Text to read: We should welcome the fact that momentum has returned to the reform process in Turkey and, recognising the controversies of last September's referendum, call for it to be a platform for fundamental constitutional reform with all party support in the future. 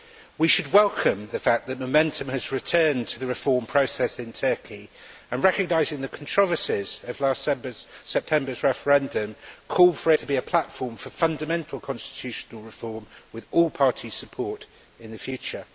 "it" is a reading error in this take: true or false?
true